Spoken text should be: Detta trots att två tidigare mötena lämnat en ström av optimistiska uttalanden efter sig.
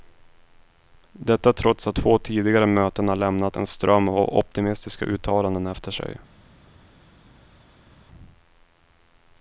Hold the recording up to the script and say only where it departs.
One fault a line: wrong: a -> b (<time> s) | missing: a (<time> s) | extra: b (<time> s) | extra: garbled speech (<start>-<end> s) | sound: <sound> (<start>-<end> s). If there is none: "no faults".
no faults